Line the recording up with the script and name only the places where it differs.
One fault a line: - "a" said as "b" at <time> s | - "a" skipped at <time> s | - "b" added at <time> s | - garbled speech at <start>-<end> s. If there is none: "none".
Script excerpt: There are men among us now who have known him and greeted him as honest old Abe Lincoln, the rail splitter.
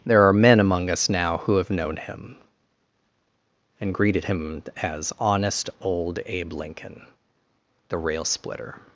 none